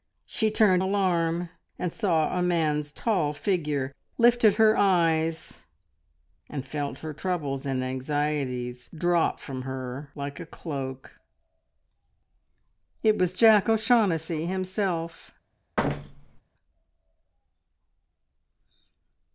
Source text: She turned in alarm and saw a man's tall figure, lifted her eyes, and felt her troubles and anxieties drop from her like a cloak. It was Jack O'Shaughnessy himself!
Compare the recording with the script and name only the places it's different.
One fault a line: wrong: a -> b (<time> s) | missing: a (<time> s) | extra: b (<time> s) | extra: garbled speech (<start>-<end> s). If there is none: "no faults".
missing: in (0.8 s)